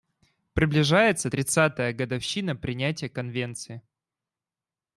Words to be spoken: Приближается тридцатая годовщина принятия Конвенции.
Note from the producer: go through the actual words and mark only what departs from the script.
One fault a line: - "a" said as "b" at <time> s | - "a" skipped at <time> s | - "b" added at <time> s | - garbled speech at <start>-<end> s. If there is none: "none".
none